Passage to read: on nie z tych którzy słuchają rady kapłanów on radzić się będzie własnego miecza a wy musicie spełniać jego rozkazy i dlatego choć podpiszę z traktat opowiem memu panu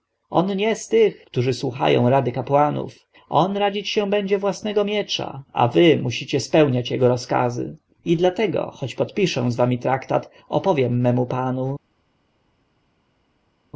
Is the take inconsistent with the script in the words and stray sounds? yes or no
yes